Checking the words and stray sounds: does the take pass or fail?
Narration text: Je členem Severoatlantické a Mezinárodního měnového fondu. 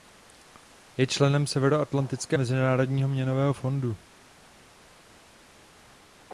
pass